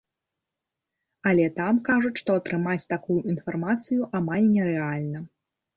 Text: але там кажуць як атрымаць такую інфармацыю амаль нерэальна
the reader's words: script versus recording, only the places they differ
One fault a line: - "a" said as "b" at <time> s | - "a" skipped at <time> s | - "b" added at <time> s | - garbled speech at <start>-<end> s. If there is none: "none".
- "як" said as "што" at 2.2 s